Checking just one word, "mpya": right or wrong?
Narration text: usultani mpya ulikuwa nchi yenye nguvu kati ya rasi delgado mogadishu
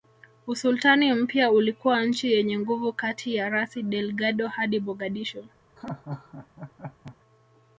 right